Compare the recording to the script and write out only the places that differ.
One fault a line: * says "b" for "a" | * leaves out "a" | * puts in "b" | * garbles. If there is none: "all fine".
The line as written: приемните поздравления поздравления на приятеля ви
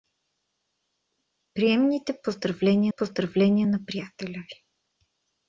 all fine